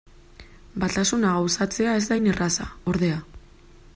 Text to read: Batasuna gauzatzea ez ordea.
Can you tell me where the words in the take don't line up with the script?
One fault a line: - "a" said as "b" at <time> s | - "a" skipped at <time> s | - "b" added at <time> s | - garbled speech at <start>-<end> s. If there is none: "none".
- "da hain erraza" added at 2.1 s